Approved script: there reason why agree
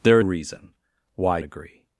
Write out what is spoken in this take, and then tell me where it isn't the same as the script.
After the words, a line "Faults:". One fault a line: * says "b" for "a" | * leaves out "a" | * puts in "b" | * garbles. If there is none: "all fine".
there reason why agree
Faults:
all fine